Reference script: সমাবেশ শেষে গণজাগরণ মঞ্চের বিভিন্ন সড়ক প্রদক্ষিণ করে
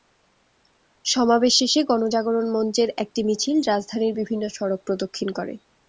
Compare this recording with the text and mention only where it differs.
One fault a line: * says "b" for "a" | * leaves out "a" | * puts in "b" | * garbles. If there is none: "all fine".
* puts in "একটি মিছিল রাজধানীর"